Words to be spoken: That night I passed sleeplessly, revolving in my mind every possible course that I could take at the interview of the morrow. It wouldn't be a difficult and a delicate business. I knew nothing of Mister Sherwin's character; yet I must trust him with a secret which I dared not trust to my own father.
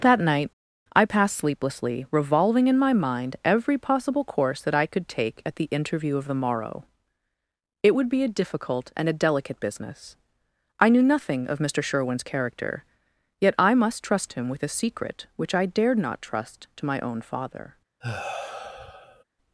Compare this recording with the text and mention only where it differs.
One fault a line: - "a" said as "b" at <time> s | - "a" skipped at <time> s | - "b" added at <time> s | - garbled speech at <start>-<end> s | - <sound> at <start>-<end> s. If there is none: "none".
- "wouldn't" said as "would" at 7.9 s
- sigh at 18.0-19.2 s